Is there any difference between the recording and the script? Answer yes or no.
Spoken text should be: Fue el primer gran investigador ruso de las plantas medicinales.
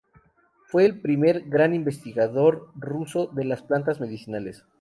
no